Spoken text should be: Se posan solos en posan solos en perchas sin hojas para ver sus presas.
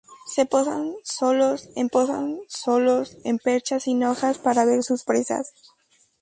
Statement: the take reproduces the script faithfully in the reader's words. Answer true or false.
true